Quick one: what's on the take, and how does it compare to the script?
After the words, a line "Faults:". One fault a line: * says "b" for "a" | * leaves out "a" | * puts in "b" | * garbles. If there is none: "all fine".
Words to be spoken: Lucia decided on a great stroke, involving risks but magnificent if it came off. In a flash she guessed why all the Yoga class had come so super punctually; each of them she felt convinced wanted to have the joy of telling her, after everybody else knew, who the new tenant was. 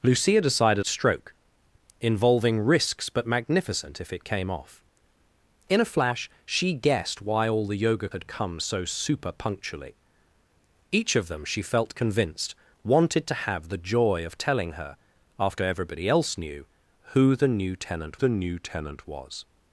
Lucia decided stroke, involving risks but magnificent if it came off. In a flash she guessed why all the Yoga had come so super punctually; each of them she felt convinced wanted to have the joy of telling her, after everybody else knew, who the new tenant the new tenant was.
Faults:
* leaves out "on a great"
* leaves out "class"
* puts in "the new tenant"